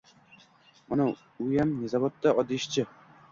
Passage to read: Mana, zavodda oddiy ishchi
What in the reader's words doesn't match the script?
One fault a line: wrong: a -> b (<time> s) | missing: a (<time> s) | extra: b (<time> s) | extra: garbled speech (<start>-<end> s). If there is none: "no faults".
extra: uyam (1.5 s)